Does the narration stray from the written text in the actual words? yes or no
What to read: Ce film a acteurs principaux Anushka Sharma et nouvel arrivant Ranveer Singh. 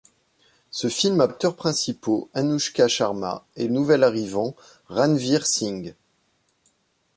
no